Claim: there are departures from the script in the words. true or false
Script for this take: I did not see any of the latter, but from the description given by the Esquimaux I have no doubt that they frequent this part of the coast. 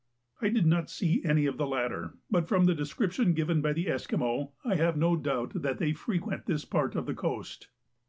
false